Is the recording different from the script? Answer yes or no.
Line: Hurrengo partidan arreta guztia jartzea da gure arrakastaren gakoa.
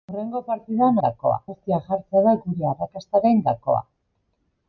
yes